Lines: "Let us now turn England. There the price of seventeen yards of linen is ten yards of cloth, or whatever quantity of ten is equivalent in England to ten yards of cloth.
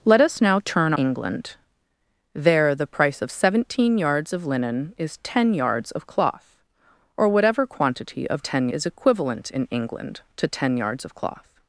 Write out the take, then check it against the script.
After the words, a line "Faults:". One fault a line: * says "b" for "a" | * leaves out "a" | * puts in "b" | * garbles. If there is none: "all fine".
"Let us now turn England. There the price of seventeen yards of linen is ten yards of cloth, or whatever quantity of ten is equivalent in England to ten yards of cloth.
Faults:
all fine